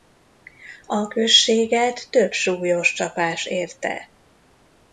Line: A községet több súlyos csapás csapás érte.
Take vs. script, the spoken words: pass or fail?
fail